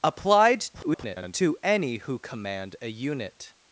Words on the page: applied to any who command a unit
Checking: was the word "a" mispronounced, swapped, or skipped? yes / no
no